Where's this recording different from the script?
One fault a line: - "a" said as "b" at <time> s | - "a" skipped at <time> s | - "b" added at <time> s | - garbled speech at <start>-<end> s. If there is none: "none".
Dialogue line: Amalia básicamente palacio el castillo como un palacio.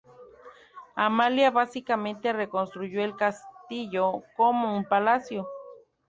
- "palacio" said as "reconstruyó" at 2.3 s